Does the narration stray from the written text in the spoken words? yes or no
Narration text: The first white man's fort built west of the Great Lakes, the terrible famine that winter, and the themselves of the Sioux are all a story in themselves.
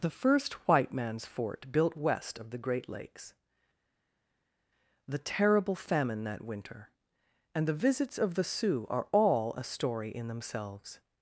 yes